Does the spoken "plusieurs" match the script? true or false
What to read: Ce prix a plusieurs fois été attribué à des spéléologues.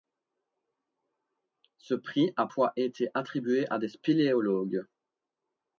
false